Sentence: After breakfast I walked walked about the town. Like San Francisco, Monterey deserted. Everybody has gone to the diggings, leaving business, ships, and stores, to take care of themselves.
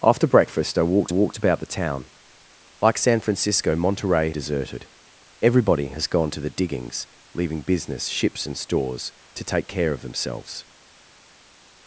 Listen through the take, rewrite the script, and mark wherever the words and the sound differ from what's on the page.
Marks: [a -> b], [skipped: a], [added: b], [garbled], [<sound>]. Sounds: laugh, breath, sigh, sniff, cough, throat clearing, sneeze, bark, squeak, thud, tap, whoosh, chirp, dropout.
After breakfast I walked walked about the town. Like San Francisco, Monterey deserted. Everybody has gone to the diggings, leaving business, ships, and stores, to take care of themselves.